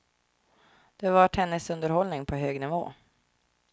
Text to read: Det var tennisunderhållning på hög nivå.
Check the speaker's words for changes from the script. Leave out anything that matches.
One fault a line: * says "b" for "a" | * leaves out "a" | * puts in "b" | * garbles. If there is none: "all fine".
all fine